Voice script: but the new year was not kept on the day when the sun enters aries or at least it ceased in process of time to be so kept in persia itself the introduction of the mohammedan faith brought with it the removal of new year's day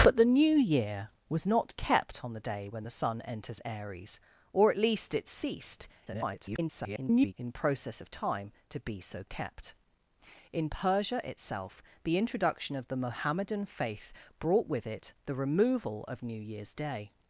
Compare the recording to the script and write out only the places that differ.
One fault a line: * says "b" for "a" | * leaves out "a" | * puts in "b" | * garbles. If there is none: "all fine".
* garbles